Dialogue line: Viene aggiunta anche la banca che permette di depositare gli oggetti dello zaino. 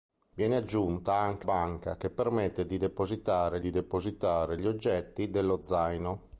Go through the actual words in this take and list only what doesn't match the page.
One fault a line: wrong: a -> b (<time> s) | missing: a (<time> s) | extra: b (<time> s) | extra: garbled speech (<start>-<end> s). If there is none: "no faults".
missing: la (1.5 s)
extra: di depositare (3.6 s)